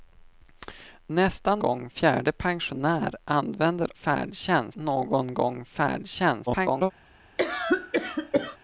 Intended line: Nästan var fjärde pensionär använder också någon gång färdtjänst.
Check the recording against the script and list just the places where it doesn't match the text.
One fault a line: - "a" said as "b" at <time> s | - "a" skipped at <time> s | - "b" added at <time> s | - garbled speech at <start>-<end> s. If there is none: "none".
- "var" said as "gång" at 1.6 s
- "också" said as "färdtjänst" at 3.9 s
- garbled speech at 6.5-6.9 s